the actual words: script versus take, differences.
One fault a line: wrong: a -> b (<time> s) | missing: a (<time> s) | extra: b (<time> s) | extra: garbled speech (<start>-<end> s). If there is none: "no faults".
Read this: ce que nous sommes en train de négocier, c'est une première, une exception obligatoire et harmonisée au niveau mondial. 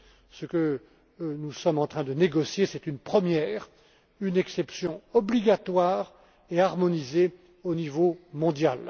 no faults